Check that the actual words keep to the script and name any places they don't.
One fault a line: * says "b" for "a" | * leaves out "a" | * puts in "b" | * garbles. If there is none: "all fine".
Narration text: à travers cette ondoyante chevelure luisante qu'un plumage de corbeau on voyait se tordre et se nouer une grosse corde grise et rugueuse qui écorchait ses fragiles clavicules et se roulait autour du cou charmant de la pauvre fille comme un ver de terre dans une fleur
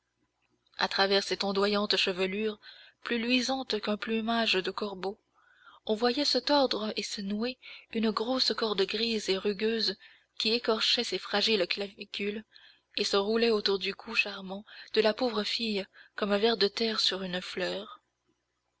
* puts in "plus"
* says "sur" for "dans"